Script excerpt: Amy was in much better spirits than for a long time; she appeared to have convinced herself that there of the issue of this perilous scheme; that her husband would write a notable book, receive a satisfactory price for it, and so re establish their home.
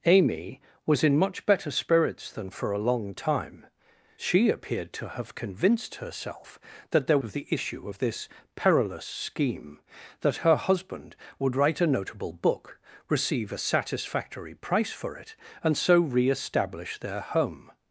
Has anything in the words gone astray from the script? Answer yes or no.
no